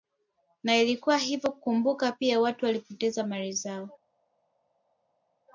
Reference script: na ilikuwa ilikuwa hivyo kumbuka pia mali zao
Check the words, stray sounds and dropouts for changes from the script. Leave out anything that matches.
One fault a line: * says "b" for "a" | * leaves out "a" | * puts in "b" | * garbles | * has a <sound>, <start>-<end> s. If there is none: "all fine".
* leaves out "ilikuwa"
* puts in "watu walipoteza"